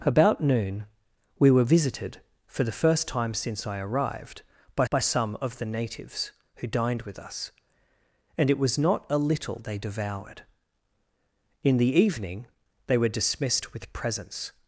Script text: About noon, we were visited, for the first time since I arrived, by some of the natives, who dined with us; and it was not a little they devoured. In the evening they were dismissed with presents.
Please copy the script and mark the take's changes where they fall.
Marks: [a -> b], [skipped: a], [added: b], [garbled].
About noon, we were visited, for the first time since I arrived, by [added: by] some of the natives, who dined with us; and it was not a little they devoured. In the evening they were dismissed with presents.